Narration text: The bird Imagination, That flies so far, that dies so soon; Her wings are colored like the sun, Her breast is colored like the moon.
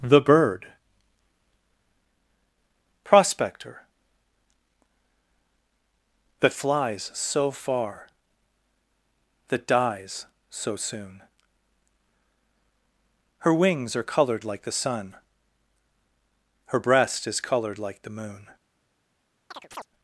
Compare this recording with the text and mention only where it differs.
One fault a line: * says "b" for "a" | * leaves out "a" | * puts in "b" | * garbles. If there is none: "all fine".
* says "Prospector" for "Imagination"